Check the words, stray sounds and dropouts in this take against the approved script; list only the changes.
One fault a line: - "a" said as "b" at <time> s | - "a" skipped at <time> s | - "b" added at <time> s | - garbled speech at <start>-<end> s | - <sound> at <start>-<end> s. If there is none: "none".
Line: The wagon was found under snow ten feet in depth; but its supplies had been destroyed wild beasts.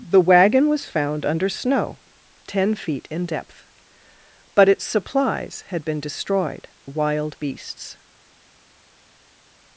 none